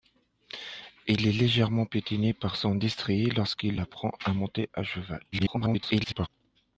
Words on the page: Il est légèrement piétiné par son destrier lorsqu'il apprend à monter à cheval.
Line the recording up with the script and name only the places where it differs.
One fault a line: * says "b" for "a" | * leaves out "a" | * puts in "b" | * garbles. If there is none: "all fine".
* garbles